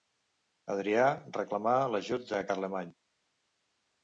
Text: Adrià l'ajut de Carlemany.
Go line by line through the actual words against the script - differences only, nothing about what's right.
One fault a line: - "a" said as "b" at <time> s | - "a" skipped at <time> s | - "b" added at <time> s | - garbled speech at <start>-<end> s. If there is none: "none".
- "reclamà" added at 1.4 s